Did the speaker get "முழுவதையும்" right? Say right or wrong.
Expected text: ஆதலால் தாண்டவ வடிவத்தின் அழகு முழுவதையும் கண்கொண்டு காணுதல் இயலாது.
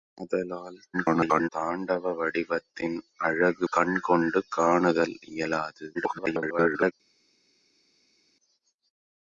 wrong